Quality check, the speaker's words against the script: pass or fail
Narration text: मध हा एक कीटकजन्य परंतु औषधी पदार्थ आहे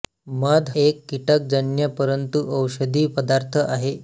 fail